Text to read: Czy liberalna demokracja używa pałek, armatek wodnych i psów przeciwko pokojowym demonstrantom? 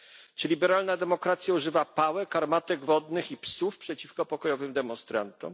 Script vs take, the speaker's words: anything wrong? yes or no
no